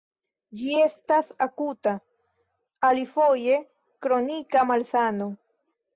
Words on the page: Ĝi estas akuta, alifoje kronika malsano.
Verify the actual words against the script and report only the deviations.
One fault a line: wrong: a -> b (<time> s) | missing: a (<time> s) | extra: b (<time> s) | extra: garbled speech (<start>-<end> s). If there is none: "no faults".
no faults